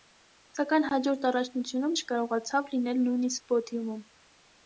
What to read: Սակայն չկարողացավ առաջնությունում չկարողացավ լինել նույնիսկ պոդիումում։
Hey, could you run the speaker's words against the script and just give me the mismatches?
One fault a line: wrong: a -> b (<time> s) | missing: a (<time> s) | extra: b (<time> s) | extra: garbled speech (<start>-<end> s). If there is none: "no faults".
wrong: չկարողացավ -> հաջորդ (0.9 s)